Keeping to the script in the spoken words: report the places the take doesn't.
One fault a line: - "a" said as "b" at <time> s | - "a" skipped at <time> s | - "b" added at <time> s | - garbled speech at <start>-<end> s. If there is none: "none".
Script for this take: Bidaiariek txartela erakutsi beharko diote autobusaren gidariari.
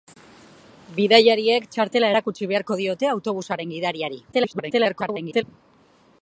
- garbled speech at 4.3-5.4 s